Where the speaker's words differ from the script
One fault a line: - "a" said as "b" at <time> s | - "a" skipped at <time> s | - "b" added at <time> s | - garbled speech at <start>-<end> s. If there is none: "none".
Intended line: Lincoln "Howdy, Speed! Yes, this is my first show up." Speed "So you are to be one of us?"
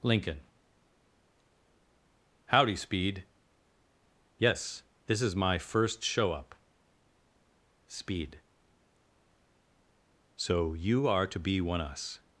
- "of" skipped at 11.8 s